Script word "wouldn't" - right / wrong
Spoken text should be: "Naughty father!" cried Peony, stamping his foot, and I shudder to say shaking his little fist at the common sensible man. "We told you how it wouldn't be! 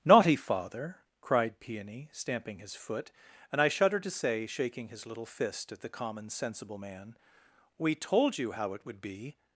wrong